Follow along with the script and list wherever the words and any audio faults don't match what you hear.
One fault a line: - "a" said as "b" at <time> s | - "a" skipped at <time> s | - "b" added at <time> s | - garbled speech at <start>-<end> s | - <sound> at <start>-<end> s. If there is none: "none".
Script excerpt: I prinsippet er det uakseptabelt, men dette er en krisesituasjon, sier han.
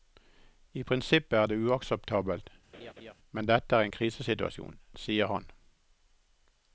- laugh at 2.7-3.1 s